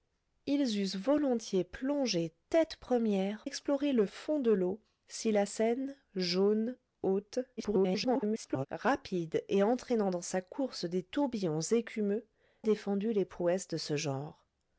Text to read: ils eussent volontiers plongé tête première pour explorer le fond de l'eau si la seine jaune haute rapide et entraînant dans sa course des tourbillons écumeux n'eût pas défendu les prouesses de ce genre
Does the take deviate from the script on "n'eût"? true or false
true